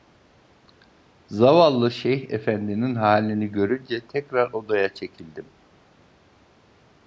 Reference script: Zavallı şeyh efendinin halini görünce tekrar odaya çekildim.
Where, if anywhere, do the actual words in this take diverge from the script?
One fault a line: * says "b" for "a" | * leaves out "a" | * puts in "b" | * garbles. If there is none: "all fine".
all fine